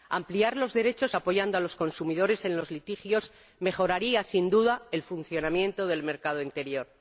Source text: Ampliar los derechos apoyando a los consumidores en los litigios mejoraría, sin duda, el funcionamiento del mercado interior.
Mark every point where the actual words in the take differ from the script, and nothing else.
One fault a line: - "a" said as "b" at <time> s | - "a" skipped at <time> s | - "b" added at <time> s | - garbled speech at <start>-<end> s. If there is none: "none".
none